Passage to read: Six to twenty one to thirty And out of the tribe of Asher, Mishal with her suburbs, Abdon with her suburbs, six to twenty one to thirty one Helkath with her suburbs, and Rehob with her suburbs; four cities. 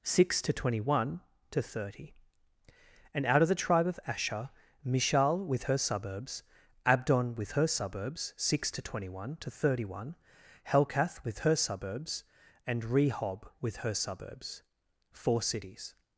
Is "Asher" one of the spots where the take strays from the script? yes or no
no